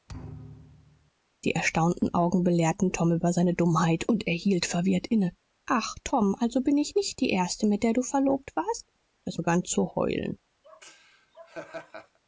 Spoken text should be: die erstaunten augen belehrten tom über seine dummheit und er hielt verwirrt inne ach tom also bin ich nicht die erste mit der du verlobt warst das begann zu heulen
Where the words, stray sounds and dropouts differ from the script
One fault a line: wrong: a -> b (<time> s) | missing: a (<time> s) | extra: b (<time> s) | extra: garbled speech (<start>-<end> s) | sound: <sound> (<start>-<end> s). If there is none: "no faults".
sound: thud (0.1-1.1 s)
sound: laugh (10.6-12.2 s)